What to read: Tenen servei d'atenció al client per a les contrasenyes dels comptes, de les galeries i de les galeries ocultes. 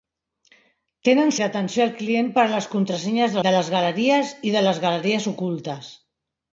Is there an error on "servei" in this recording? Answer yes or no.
yes